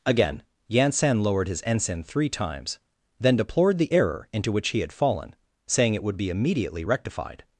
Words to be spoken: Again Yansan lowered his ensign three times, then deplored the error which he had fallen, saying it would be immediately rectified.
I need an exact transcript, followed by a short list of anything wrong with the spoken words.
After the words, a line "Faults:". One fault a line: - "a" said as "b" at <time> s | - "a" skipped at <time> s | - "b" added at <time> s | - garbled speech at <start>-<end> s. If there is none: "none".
Again Yansan lowered his ensign three times, then deplored the error into which he had fallen, saying it would be immediately rectified.
Faults:
- "into" added at 4.3 s